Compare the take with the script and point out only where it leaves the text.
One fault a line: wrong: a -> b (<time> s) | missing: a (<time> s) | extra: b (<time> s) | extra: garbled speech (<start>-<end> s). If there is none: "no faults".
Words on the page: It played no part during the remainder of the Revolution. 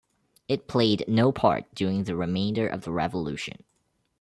no faults